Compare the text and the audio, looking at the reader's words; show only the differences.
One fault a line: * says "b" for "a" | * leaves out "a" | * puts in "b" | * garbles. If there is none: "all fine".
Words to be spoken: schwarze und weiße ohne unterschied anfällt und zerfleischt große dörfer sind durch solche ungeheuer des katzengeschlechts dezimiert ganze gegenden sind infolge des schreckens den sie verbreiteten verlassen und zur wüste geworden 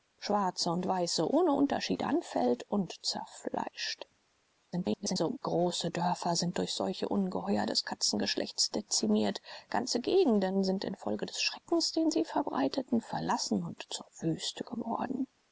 * garbles